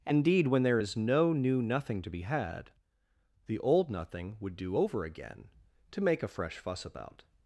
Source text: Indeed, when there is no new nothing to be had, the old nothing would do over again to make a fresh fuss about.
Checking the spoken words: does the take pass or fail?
pass